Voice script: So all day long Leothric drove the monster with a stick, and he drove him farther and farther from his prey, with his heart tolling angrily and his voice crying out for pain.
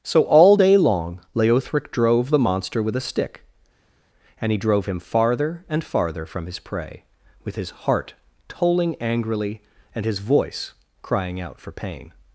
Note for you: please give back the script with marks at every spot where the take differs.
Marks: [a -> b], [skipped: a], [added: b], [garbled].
So all day long Leothric drove the monster with a stick, and he drove him farther and farther from his prey, with his heart tolling angrily and his voice crying out for pain.